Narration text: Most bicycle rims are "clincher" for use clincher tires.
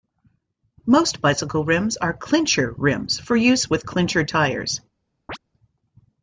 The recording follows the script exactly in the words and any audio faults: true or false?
false